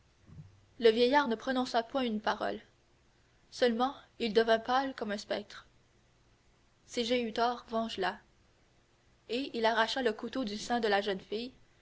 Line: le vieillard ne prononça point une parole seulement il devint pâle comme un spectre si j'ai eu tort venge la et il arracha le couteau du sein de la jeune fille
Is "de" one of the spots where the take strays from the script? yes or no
no